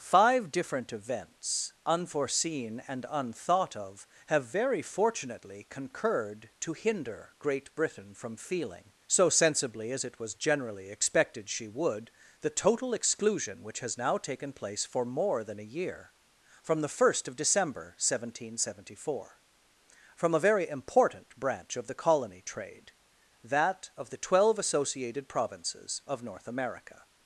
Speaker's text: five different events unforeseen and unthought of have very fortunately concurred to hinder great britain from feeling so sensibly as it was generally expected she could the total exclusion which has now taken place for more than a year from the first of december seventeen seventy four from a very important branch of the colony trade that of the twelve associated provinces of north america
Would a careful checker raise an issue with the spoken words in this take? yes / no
yes